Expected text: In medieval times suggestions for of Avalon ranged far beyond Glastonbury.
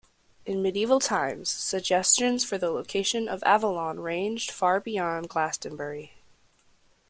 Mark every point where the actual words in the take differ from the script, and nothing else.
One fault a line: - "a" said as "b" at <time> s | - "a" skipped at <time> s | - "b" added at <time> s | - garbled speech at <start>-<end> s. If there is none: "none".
- "the location" added at 2.6 s